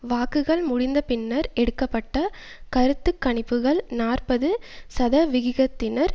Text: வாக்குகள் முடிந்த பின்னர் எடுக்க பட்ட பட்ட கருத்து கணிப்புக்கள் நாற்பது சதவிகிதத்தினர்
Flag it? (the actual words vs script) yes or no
yes